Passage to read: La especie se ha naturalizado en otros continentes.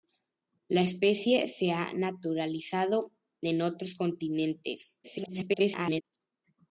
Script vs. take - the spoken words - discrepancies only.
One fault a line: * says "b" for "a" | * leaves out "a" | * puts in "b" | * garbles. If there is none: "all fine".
* garbles